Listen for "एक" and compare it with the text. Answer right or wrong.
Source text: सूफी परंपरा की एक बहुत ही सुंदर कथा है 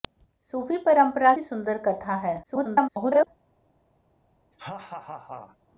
wrong